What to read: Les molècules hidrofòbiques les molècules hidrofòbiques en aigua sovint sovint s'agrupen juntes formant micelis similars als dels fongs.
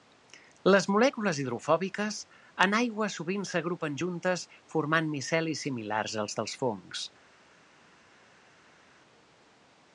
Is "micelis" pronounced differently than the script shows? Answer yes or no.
no